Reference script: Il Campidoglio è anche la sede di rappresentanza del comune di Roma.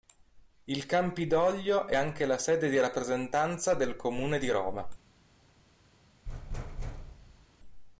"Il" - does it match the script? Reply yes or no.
yes